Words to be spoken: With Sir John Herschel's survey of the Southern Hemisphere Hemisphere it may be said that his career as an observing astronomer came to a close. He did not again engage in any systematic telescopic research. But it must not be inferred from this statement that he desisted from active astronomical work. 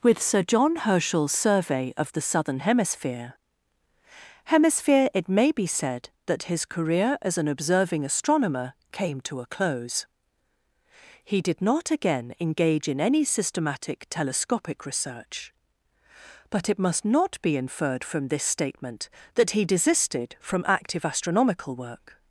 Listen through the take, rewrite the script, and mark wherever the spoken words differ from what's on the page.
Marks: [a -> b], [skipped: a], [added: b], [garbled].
With Sir John Herschel's survey of the Southern Hemisphere Hemisphere it may be said that his career as an observing astronomer came to a close. He did not again engage in any systematic telescopic research. But it must not be inferred from this statement that he desisted from active astronomical work.